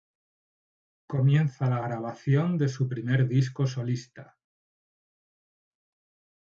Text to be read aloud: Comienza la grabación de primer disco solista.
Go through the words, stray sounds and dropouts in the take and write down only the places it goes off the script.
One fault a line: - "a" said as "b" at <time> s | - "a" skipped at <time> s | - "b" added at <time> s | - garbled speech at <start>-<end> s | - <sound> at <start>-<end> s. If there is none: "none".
- "su" added at 2.7 s